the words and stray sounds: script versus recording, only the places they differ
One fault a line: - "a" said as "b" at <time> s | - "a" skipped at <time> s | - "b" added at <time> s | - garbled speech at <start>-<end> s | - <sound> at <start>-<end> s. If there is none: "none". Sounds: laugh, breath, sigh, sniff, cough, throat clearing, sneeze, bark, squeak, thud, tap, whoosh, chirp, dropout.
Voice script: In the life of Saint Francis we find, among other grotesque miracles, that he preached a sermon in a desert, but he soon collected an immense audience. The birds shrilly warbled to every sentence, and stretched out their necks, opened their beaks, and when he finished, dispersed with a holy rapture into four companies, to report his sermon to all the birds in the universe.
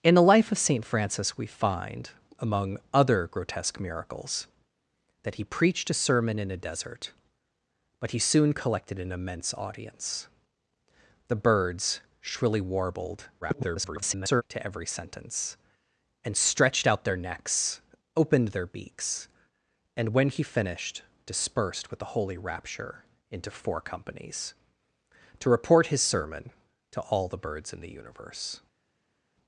- garbled speech at 13.4-14.4 s